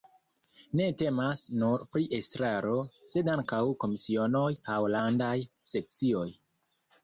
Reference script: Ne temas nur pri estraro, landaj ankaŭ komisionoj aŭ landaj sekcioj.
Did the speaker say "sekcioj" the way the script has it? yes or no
yes